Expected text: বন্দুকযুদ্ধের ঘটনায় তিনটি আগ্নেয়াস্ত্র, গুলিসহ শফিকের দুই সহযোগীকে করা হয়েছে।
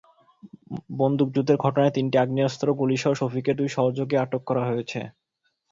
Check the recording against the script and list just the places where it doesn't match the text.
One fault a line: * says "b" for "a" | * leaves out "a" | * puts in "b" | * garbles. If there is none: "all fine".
* puts in "আটক"